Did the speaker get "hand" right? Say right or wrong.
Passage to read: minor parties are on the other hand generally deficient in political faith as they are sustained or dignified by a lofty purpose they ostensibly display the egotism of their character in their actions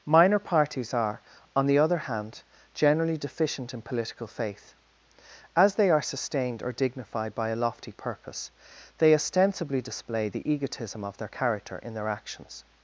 right